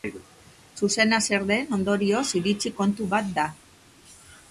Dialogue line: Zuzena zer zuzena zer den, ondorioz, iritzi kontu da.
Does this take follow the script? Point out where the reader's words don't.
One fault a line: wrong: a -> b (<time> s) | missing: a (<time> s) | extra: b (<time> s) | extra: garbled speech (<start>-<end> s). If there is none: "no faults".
missing: zuzena zer (1.4 s)
extra: bat (3.1 s)